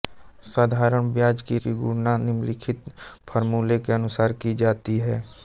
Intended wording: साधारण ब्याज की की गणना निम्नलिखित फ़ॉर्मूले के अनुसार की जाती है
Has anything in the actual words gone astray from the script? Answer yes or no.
no